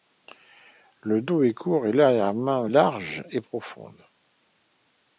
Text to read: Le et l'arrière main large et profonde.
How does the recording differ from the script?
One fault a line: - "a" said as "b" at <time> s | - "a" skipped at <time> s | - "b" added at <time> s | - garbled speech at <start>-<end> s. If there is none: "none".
- "dos est court" added at 1.2 s